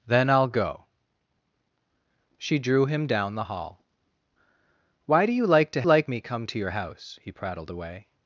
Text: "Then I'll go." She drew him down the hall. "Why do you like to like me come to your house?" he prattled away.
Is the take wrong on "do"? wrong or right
right